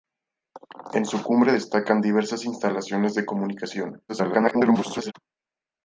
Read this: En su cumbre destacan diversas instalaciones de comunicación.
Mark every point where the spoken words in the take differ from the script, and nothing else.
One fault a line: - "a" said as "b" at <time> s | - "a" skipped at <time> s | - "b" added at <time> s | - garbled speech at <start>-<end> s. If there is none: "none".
- garbled speech at 4.1-5.1 s